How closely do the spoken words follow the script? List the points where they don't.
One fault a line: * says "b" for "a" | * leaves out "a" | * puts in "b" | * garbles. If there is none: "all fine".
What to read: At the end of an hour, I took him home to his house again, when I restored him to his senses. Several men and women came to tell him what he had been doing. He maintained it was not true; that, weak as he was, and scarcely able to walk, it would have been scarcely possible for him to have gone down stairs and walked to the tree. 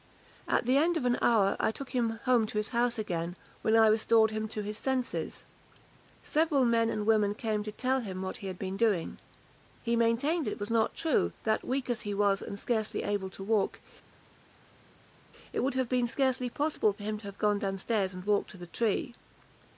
all fine